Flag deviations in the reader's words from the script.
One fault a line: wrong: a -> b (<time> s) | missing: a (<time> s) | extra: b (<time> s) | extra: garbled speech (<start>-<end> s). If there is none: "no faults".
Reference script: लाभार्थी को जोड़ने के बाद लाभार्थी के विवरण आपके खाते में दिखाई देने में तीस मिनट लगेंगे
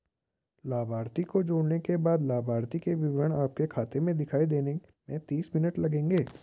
no faults